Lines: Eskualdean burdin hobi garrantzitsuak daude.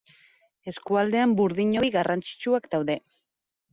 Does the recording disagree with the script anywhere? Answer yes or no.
no